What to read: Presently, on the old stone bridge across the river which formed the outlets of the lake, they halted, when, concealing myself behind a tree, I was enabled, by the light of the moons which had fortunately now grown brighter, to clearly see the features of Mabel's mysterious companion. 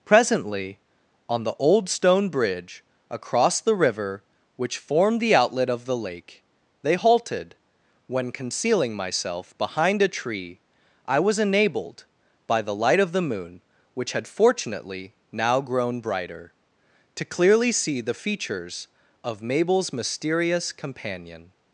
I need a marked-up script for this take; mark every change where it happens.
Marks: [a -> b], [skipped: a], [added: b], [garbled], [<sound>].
Presently, on the old stone bridge across the river which formed the [outlets -> outlet] of the lake, they halted, when, concealing myself behind a tree, I was enabled, by the light of the [moons -> moon] which had fortunately now grown brighter, to clearly see the features of Mabel's mysterious companion.